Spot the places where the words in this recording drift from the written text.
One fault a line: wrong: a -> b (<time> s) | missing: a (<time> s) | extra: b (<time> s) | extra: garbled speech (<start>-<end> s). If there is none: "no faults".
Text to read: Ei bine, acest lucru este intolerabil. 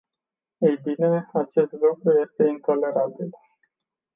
no faults